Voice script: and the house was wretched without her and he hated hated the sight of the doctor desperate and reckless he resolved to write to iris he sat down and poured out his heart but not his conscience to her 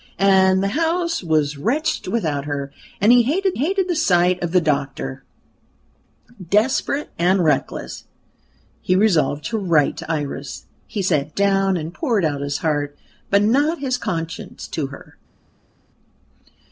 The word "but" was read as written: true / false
true